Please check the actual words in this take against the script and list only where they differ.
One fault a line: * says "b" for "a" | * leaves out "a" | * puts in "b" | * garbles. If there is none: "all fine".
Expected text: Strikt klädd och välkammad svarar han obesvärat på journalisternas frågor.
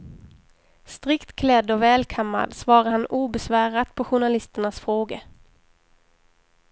all fine